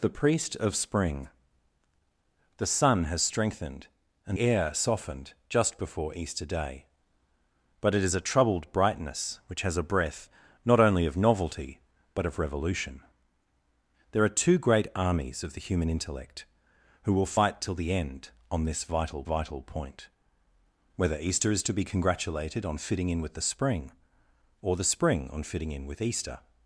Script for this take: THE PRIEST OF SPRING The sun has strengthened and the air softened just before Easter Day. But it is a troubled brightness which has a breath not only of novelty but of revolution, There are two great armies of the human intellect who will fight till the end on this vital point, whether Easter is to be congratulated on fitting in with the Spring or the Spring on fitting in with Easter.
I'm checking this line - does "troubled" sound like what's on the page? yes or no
yes